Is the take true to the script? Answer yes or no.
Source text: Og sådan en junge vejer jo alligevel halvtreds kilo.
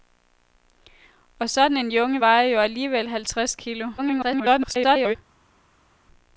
no